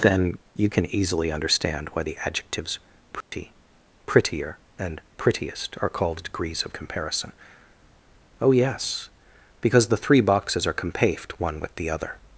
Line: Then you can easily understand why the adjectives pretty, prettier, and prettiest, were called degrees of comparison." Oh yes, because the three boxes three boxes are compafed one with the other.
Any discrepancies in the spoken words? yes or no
yes